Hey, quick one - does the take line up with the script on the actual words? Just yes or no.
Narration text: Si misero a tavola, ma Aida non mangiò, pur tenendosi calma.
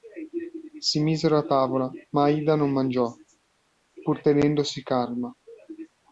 yes